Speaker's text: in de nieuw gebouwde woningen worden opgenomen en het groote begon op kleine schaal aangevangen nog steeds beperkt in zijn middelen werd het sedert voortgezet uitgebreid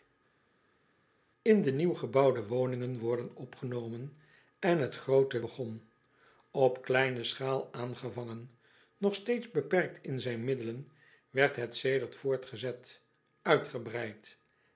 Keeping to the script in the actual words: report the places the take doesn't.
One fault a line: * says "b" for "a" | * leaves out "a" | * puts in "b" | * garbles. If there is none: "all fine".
all fine